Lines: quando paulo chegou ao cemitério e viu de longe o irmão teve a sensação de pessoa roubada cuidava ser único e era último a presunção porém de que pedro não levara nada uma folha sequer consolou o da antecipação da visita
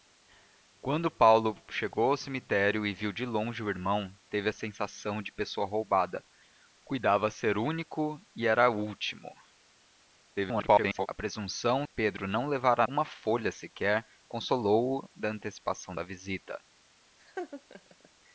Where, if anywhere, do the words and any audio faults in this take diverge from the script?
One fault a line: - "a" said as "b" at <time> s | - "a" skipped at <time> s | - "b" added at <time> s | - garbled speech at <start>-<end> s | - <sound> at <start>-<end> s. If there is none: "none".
- garbled speech at 10.3-11.1 s
- "porém de que" skipped at 11.8 s
- "nada" skipped at 12.9 s
- laugh at 17.2-18.1 s